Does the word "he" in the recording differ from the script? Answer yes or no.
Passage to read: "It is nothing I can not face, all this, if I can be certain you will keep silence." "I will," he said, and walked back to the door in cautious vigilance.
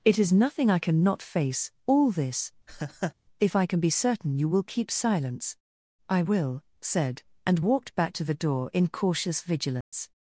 yes